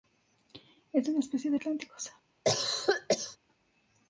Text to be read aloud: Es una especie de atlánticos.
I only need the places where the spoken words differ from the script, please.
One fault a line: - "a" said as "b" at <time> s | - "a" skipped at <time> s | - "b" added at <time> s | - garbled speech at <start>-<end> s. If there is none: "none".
none